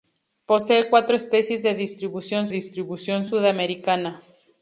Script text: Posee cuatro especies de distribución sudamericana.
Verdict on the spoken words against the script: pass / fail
fail